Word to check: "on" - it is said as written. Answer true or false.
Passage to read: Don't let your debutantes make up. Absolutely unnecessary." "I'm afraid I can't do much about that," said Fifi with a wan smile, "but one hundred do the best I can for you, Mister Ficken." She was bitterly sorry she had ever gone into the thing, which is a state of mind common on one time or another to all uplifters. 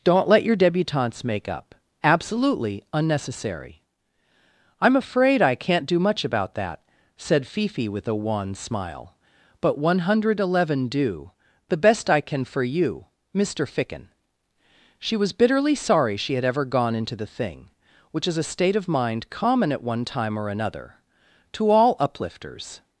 false